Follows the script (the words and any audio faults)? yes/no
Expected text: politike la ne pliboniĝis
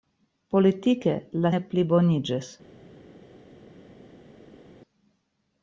yes